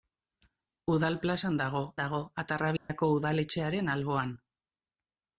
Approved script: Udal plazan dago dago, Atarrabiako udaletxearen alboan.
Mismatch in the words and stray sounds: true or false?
true